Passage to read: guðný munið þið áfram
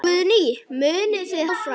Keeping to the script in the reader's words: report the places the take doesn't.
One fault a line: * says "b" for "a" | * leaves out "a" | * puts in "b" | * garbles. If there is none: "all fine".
all fine